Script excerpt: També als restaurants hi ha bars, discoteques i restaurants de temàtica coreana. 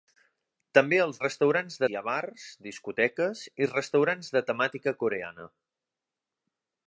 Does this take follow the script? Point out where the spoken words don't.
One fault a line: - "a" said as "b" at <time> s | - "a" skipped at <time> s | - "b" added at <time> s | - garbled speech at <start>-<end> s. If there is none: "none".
none